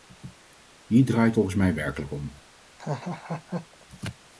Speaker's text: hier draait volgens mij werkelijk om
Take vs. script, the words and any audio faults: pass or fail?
fail